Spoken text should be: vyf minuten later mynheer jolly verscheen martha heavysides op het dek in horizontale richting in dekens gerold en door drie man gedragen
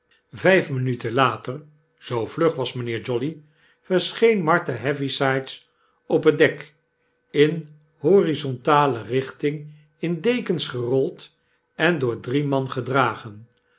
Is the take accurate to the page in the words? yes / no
no